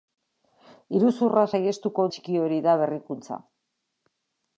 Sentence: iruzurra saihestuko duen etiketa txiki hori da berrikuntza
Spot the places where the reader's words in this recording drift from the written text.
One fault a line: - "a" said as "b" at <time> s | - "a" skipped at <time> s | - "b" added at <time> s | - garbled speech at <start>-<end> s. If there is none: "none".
- "duen etiketa" skipped at 2.1 s